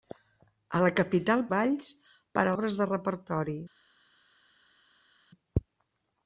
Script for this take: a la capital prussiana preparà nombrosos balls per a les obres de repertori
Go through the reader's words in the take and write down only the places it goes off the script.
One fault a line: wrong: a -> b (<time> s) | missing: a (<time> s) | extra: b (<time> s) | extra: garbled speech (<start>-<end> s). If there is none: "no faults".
missing: prussiana preparà nombrosos (1.4 s)
missing: les (2.6 s)